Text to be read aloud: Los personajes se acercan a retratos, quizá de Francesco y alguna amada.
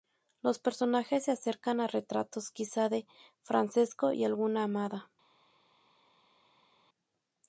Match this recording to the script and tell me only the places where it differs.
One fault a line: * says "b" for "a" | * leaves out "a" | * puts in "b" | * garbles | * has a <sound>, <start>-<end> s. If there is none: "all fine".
all fine